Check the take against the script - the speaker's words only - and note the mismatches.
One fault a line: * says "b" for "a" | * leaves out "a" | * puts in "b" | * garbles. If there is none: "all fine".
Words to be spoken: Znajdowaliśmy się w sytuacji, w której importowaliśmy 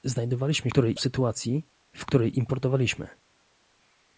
* says "której" for "się"